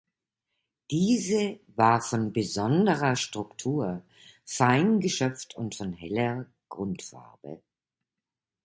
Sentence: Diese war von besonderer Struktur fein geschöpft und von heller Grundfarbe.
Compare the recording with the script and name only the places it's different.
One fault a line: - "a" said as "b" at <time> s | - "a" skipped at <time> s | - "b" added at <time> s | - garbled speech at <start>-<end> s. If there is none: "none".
none